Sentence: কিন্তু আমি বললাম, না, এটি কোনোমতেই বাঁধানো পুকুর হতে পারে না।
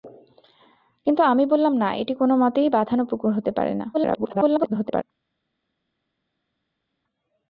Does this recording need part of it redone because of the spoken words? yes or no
yes